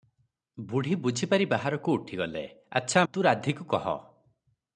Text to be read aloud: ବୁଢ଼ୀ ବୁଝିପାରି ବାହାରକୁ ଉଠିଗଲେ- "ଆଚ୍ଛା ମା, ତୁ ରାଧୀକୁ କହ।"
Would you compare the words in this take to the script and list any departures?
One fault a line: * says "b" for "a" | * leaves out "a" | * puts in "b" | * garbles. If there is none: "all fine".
* leaves out "ମା"